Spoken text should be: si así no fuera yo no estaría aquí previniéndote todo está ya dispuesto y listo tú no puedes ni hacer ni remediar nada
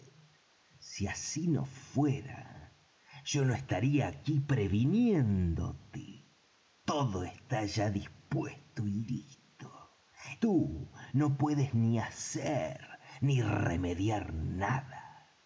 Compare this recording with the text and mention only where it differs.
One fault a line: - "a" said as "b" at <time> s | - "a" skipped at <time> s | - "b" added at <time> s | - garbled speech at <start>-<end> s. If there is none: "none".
none